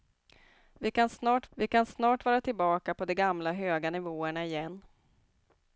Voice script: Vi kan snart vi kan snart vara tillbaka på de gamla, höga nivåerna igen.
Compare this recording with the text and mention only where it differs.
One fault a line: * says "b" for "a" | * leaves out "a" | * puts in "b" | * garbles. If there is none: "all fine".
all fine